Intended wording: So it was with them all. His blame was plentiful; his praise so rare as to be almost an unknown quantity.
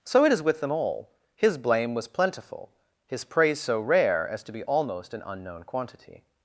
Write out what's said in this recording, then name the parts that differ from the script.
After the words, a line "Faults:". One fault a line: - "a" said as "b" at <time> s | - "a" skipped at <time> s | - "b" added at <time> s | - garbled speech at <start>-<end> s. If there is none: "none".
So it is with them all. His blame was plentiful; his praise so rare as to be almost an unknown quantity.
Faults:
- "was" said as "is" at 0.3 s